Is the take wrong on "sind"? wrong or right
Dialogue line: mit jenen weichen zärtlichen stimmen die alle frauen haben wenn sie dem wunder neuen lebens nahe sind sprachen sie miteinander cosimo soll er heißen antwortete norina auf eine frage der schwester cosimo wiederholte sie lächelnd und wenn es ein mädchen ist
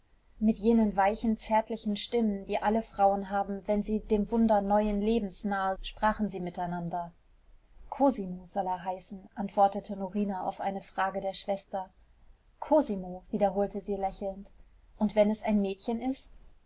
wrong